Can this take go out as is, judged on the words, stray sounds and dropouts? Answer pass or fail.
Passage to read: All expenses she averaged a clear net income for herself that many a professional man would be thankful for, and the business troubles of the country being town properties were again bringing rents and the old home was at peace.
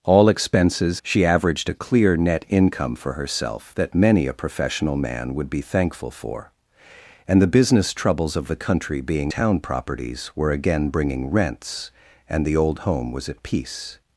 pass